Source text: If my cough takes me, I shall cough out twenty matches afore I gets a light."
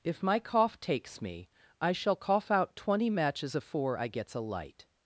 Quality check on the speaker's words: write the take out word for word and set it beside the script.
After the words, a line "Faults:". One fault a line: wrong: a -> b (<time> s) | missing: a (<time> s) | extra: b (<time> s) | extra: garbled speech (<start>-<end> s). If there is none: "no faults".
If my cough takes me, I shall cough out twenty matches afore I gets a light."
Faults:
no faults